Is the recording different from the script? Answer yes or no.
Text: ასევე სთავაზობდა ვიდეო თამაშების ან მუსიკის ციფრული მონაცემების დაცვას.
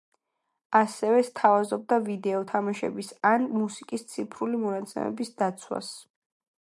no